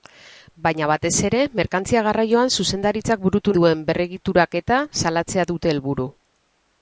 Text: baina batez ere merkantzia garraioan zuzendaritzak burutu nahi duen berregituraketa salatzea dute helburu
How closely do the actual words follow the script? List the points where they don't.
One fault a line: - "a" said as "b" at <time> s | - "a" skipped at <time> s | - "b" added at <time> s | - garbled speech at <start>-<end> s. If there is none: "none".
- "nahi" skipped at 3.5 s